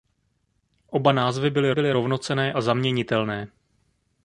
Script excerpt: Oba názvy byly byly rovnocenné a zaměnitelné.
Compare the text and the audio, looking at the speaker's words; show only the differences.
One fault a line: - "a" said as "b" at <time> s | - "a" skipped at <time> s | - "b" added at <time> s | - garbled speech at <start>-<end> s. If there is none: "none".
none